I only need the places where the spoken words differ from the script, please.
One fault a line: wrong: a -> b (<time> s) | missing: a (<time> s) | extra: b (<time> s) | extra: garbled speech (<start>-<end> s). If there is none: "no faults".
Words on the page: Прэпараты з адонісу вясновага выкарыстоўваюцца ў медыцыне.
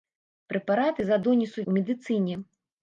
missing: вясновага выкарыстоўваюцца (1.6 s)